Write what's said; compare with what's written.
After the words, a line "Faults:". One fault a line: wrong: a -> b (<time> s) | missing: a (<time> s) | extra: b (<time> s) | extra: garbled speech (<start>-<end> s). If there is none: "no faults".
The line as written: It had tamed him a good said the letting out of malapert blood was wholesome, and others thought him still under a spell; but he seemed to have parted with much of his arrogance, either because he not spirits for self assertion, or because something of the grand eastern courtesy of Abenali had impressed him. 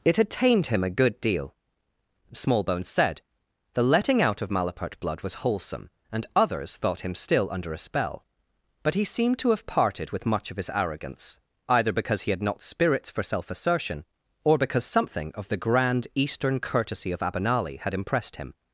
It had tamed him a good deal. Smallbones said the letting out of malapert blood was wholesome, and others thought him still under a spell; but he seemed to have parted with much of his arrogance, either because he had not spirits for self assertion, or because something of the grand eastern courtesy of Abenali had impressed him.
Faults:
extra: deal Smallbones (1.2 s)
extra: had (12.3 s)